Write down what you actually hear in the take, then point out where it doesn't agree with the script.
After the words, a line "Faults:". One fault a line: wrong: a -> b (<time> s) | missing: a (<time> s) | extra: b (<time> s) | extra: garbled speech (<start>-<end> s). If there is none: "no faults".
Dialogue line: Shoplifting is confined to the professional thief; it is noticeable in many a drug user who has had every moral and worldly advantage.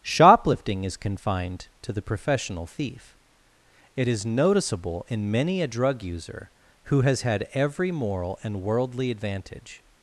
Shoplifting is confined to the professional thief; it is noticeable in many a drug user who has had every moral and worldly advantage.
Faults:
no faults